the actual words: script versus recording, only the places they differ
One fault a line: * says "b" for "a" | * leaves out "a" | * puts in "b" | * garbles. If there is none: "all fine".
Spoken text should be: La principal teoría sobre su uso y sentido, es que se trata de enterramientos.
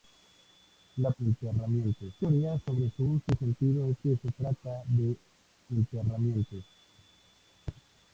* says "enterramientos" for "principal"